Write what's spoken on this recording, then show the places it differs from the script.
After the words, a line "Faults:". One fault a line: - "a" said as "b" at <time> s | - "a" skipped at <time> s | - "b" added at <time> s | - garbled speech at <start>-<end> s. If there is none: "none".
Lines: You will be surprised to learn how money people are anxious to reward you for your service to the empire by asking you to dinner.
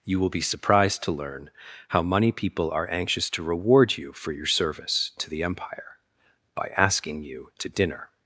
You will be surprised to learn how money people are anxious to reward you for your service to the empire by asking you to dinner.
Faults:
none